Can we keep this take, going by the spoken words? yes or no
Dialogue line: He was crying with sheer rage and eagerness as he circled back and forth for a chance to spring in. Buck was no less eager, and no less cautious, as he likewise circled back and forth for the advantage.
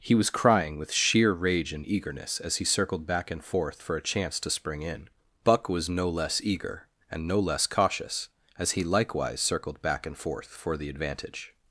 yes